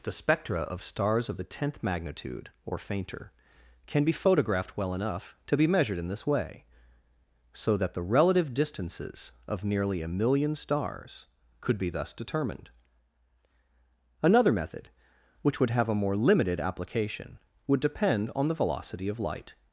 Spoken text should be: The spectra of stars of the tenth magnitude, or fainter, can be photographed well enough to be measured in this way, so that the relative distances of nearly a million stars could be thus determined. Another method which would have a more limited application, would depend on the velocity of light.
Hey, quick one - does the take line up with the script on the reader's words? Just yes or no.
yes